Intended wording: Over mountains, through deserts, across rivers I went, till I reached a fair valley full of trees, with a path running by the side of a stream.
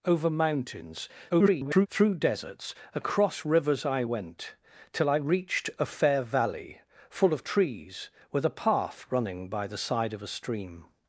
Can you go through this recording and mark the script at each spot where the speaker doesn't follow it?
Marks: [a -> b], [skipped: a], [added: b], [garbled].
Over mountains, [garbled] through deserts, across rivers I went, till I reached a fair valley full of trees, with a path running by the side of a stream.